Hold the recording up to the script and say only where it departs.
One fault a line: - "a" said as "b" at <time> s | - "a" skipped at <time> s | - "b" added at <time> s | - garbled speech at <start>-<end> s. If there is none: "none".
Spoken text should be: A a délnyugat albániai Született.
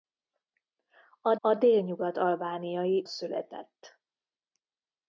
none